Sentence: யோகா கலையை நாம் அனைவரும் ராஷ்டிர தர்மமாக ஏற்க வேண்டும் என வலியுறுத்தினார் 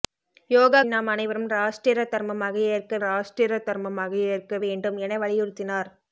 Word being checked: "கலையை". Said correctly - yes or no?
no